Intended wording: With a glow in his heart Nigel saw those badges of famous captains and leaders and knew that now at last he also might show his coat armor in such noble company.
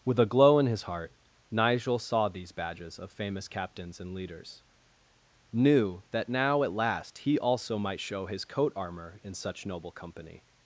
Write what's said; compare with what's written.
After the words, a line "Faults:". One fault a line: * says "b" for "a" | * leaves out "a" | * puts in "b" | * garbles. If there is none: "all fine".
With a glow in his heart Nigel saw these badges of famous captains and leaders knew that now at last he also might show his coat armor in such noble company.
Faults:
* says "these" for "those"
* leaves out "and"